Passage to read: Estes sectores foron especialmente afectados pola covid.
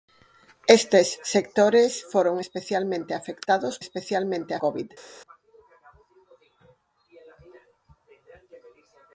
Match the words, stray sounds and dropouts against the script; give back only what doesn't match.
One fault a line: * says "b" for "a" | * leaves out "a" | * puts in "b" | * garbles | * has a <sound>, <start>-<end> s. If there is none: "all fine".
* says "especialmente" for "pola"